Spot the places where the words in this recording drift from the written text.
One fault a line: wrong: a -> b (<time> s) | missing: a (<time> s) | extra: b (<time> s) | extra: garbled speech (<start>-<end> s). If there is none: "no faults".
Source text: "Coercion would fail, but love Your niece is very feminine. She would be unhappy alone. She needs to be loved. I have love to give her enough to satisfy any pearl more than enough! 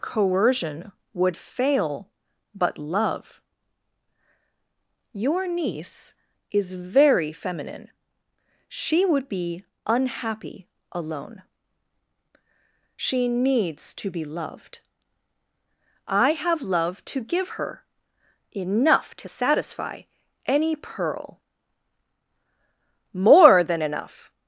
no faults